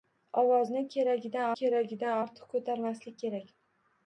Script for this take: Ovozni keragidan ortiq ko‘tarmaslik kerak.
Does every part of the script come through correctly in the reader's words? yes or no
no